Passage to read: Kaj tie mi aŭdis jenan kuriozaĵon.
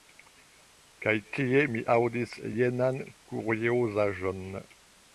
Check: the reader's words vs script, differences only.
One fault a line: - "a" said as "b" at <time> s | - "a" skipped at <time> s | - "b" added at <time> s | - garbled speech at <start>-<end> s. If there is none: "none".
none